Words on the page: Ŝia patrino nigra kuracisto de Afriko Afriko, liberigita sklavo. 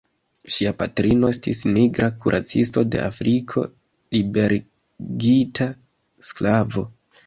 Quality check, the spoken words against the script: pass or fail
fail